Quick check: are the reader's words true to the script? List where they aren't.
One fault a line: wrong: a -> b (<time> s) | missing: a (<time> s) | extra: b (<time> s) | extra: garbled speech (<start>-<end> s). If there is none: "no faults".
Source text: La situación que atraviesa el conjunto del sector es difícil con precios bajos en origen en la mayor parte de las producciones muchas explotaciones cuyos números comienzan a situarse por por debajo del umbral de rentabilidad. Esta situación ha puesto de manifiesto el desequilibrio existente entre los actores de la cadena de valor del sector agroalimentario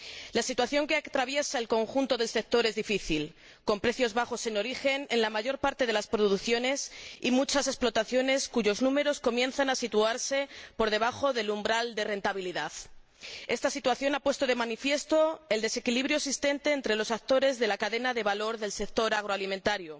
extra: y (7.2 s)
missing: por (10.9 s)